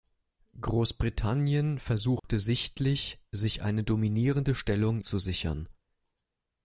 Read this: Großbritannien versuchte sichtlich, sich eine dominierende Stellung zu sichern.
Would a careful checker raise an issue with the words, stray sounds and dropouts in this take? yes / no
yes